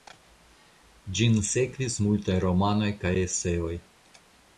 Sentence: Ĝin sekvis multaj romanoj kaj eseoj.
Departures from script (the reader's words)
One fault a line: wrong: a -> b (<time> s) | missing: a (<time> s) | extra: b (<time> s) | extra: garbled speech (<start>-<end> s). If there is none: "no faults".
no faults